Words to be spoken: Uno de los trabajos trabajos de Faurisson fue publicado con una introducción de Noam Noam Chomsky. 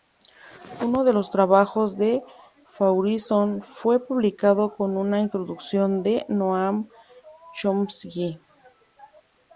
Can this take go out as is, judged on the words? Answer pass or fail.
fail